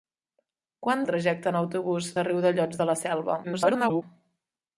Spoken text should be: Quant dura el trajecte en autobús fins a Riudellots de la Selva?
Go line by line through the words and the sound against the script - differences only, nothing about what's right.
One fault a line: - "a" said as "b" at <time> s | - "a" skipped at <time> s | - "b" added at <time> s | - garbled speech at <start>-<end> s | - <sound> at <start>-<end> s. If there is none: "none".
- "dura" skipped at 1.0 s
- "fins" skipped at 2.1 s
- garbled speech at 3.4-4.0 s